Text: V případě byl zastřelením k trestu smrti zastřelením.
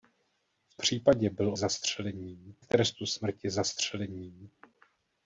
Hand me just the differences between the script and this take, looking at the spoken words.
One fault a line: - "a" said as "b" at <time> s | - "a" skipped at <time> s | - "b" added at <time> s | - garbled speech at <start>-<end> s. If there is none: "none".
none